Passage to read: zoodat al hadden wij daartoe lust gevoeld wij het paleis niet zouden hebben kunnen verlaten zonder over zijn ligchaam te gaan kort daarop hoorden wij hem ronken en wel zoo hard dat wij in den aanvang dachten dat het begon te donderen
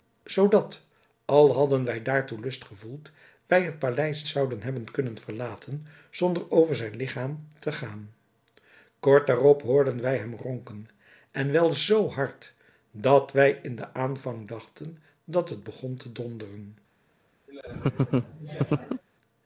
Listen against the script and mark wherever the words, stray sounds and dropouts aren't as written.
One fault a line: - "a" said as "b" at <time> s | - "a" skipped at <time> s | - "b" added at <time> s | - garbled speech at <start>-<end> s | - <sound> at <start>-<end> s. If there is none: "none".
- "niet" skipped at 4.2 s
- laugh at 17.5-19.0 s